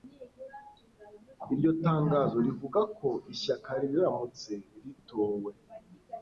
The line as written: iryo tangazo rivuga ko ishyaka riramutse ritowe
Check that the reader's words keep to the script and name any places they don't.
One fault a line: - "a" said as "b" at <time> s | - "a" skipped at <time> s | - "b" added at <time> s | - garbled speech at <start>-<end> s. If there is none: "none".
none